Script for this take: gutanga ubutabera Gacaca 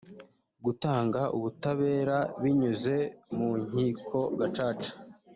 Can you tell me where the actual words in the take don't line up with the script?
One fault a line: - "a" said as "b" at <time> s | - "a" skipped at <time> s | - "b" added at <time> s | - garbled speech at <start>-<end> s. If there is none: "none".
- "binyuze mu nkiko" added at 2.4 s